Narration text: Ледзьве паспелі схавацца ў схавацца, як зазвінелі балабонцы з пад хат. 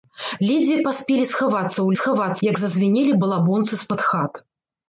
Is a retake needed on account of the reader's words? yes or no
no